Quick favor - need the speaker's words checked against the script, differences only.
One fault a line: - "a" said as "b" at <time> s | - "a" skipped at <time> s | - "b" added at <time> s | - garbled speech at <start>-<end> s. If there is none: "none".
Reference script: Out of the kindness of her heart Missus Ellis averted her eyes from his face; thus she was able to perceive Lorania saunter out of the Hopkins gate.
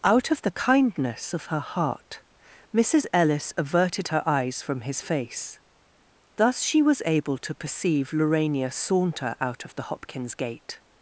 none